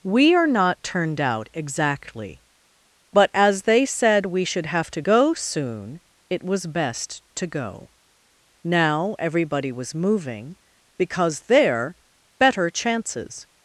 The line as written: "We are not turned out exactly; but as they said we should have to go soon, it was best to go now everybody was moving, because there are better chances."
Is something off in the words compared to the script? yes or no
yes